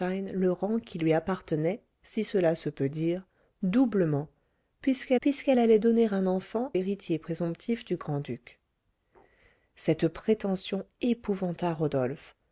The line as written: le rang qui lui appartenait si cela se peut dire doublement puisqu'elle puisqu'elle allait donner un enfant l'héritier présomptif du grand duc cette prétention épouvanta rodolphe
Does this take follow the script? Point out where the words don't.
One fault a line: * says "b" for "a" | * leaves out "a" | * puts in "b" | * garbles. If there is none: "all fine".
all fine